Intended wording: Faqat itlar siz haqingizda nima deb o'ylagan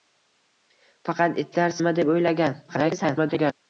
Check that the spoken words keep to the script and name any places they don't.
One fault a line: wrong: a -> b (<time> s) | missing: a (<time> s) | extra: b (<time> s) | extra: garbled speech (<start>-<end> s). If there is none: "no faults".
missing: siz haqingizda (1.8 s)
extra: garbled speech (2.7-3.5 s)